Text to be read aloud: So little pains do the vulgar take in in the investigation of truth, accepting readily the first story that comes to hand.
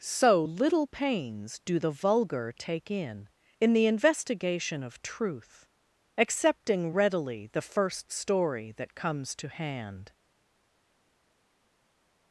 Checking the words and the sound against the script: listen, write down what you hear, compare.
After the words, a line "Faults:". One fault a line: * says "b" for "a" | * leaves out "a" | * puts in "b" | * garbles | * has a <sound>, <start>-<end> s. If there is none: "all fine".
So little pains do the vulgar take in in the investigation of truth, accepting readily the first story that comes to hand.
Faults:
all fine